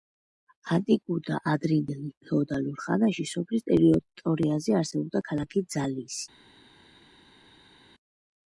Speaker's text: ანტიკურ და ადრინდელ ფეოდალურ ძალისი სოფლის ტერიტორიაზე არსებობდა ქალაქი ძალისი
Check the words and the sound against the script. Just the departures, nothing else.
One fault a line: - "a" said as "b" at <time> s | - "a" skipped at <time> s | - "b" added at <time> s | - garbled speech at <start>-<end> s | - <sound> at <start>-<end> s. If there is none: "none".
- "ძალისი" said as "ხანაში" at 2.8 s